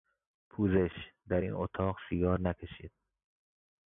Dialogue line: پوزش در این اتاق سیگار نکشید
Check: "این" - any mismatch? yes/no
no